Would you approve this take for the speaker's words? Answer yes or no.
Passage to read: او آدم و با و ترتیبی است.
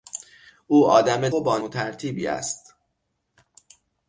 yes